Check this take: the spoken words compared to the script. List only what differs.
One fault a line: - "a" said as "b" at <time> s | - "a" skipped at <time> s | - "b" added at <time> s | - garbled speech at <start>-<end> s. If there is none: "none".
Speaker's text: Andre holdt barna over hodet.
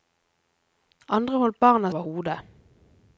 none